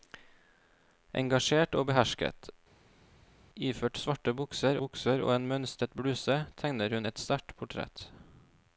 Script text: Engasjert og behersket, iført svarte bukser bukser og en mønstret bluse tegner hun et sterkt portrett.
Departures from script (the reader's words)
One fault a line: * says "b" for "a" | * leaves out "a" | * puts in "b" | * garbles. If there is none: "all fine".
all fine